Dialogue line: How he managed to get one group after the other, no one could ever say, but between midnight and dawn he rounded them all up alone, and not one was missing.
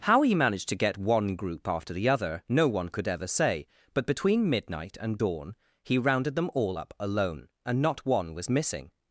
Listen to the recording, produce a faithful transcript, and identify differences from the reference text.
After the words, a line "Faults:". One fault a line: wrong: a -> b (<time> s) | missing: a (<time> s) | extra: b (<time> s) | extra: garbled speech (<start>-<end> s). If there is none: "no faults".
How he managed to get one group after the other, no one could ever say, but between midnight and dawn he rounded them all up alone, and not one was missing.
Faults:
no faults